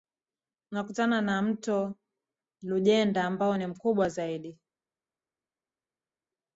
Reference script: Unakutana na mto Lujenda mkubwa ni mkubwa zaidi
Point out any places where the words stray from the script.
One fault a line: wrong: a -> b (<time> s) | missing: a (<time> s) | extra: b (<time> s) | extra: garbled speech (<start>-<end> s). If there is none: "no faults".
wrong: mkubwa -> ambao (3.2 s)